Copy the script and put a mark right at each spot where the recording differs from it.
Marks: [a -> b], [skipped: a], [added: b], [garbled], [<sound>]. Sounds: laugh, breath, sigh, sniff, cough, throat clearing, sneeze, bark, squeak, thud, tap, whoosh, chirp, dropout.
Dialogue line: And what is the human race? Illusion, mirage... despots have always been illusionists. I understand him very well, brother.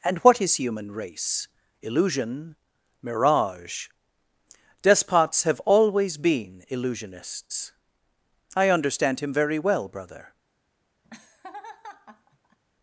And what is [skipped: the] human race? Illusion, mirage... despots have always been illusionists. I understand him very well, brother. [laugh]